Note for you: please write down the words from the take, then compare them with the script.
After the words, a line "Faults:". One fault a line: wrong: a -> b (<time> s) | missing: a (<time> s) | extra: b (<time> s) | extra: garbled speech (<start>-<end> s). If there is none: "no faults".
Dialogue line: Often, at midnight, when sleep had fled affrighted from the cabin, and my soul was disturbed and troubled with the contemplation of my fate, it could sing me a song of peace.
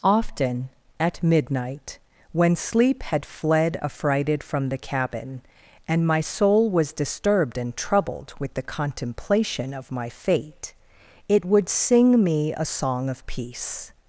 Often, at midnight, when sleep had fled affrighted from the cabin, and my soul was disturbed and troubled with the contemplation of my fate, it would sing me a song of peace.
Faults:
wrong: could -> would (11.4 s)